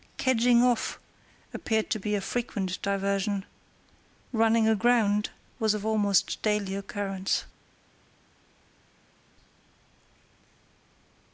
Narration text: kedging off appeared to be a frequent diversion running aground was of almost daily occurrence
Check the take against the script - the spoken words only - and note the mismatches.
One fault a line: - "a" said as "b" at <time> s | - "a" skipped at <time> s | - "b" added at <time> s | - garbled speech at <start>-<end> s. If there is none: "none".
none